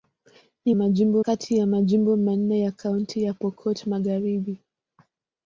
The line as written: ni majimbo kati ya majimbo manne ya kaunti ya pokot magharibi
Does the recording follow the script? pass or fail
pass